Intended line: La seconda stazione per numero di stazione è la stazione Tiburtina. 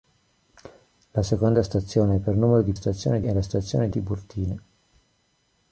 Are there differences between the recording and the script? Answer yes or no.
no